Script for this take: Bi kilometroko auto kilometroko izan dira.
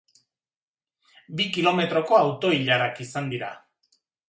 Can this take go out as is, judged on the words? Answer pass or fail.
fail